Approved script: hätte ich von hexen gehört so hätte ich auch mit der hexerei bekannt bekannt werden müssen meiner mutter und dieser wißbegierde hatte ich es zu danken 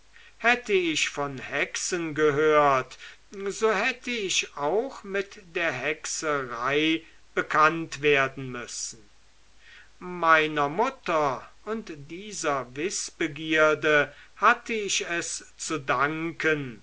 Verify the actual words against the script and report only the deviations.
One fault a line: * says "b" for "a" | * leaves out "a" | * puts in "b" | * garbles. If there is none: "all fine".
* leaves out "bekannt"